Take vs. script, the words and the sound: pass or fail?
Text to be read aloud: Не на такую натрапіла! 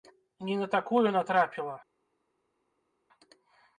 pass